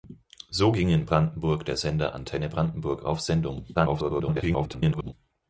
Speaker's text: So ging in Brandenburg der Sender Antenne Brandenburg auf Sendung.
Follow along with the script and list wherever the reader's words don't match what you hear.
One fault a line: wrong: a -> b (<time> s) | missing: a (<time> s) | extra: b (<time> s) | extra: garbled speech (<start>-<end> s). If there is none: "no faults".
extra: garbled speech (3.7-5.1 s)